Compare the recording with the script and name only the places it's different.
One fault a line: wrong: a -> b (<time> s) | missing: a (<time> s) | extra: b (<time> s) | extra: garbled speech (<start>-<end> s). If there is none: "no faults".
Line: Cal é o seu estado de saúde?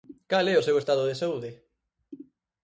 no faults